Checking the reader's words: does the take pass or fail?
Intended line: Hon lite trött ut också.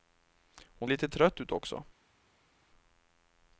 pass